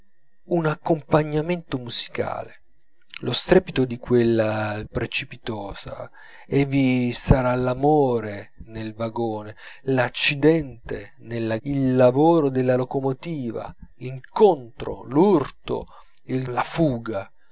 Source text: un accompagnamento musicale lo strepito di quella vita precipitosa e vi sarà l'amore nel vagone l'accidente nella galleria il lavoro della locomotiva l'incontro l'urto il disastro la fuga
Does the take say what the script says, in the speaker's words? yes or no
no